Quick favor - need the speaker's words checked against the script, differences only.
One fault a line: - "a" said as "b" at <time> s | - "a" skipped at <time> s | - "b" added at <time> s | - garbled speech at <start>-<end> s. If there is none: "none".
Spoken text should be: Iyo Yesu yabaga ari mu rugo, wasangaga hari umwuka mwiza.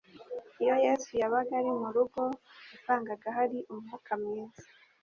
none